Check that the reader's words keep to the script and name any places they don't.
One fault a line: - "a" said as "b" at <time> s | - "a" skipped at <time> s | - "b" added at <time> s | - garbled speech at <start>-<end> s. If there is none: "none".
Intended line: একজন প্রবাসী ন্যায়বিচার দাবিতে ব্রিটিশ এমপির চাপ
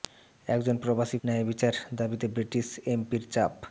none